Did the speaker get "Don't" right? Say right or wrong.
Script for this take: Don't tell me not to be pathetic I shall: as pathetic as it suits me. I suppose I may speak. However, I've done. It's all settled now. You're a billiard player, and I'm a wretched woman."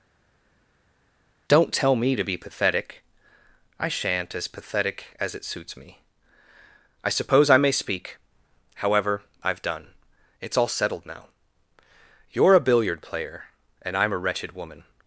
right